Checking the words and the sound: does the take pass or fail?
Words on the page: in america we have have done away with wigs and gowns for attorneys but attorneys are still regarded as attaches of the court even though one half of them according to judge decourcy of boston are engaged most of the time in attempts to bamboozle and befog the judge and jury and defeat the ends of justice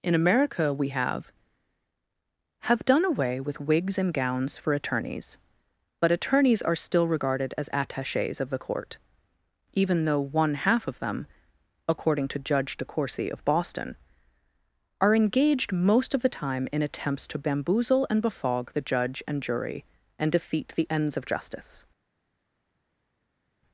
pass